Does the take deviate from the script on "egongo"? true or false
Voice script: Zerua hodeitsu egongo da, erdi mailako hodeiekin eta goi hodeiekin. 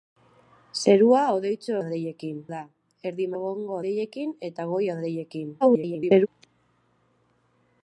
true